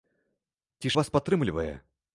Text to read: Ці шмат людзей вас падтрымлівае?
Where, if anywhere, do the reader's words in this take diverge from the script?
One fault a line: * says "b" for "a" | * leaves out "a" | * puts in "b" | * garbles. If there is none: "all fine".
* leaves out "шмат людзей"